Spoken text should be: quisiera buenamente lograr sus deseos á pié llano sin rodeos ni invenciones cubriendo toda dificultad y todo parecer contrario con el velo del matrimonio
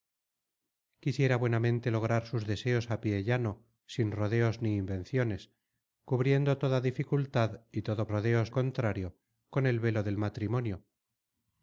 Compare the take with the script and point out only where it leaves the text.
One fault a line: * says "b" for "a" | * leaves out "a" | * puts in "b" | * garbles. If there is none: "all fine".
* says "rodeos" for "parecer"